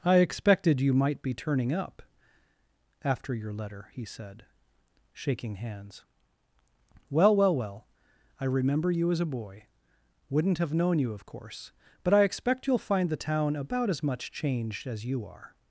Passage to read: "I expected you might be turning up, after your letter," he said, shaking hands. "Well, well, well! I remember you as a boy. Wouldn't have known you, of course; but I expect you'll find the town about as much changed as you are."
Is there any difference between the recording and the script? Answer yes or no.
no